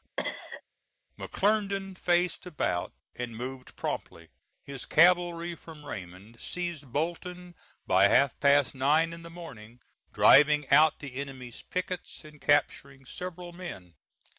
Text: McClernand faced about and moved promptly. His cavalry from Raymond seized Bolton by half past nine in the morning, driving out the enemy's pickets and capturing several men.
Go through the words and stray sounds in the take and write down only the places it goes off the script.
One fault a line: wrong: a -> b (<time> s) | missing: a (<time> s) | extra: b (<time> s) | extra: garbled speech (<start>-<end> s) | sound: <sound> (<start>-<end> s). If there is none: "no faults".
sound: cough (0.2-0.6 s)